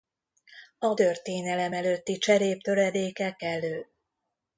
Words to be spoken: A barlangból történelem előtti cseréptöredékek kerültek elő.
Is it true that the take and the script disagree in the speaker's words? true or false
true